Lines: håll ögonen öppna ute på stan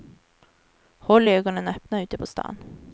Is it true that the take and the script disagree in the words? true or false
false